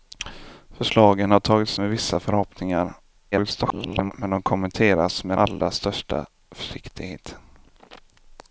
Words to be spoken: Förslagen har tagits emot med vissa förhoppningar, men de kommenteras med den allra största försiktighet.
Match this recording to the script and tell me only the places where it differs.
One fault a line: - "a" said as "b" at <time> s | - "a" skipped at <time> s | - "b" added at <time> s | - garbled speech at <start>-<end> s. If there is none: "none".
- "emot" skipped at 1.8 s
- garbled speech at 3.3-4.1 s
- "den" skipped at 5.4 s